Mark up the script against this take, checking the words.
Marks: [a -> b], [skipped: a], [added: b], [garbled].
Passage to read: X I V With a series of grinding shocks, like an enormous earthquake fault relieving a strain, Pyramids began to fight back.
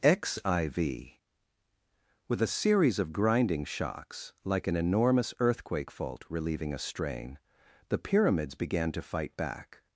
X I V With a series of grinding shocks, like an enormous earthquake fault relieving a strain, [added: the] Pyramids began to fight back.